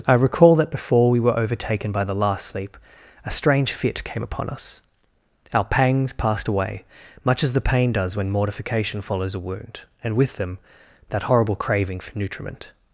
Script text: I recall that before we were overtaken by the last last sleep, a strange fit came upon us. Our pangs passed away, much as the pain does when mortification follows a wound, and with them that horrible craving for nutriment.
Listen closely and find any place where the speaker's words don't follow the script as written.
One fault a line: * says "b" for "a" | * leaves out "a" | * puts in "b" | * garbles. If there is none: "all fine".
* leaves out "last"